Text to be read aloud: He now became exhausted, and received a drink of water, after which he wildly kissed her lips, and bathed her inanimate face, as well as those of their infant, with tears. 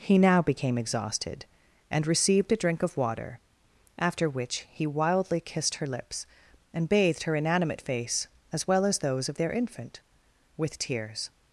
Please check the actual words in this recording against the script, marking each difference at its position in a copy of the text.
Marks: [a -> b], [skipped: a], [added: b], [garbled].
He now became exhausted, and received a drink of water, after which he wildly kissed her lips, and bathed her inanimate face, as well as those of their infant, with tears.